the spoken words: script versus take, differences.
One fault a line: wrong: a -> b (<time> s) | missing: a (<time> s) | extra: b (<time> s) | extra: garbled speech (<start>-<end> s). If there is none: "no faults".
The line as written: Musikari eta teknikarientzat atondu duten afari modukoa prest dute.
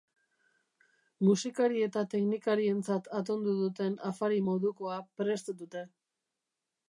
no faults